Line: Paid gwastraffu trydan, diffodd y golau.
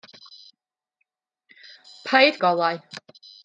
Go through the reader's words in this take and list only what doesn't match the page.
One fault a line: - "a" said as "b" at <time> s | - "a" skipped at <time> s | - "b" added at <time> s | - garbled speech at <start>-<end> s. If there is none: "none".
- "gwastraffu trydan diffodd" skipped at 2.4 s